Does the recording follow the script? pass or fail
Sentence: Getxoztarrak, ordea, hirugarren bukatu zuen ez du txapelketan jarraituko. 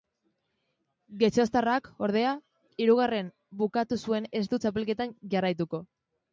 pass